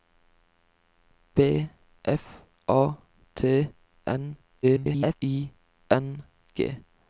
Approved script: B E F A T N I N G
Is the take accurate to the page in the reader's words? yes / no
no